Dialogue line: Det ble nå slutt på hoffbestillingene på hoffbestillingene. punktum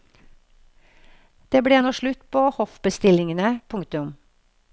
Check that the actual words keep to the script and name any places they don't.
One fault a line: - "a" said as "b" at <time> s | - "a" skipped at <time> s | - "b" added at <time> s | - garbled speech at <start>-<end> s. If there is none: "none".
- "på hoffbestillingene" skipped at 3.6 s